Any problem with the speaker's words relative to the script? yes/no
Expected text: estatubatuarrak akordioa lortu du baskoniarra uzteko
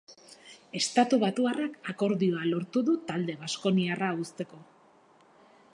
yes